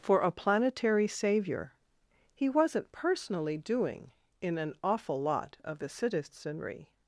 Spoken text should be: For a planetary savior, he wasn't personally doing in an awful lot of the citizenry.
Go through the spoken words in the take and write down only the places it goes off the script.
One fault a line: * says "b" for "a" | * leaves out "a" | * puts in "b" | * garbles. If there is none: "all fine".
all fine